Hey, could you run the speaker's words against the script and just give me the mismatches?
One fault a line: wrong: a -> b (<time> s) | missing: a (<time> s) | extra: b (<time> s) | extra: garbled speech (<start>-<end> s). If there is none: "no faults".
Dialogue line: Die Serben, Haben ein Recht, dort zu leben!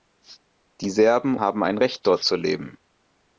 no faults